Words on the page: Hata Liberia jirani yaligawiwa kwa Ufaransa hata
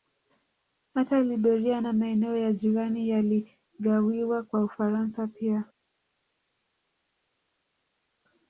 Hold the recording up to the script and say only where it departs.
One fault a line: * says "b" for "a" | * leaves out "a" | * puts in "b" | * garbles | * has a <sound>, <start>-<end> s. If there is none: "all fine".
* puts in "na maeneo ya"
* says "pia" for "hata"